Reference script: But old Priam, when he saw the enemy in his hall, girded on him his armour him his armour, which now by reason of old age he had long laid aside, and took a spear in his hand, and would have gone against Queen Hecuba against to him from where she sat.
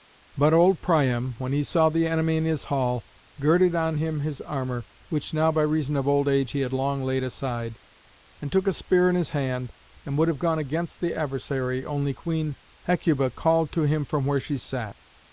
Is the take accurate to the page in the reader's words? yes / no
no